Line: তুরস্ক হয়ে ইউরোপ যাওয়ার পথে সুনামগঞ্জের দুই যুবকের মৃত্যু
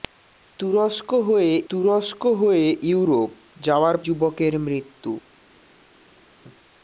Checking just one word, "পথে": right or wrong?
wrong